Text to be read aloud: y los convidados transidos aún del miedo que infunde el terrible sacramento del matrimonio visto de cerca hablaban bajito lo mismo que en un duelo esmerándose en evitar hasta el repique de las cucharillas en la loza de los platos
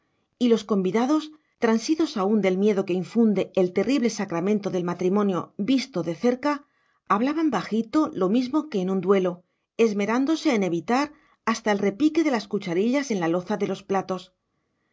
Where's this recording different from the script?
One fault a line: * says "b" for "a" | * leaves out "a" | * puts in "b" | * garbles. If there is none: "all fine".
all fine